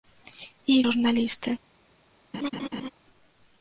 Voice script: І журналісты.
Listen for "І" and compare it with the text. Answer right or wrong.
right